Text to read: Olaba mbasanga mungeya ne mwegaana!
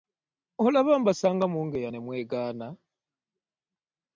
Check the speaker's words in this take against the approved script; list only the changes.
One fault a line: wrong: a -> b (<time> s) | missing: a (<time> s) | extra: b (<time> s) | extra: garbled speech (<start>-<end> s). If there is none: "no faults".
no faults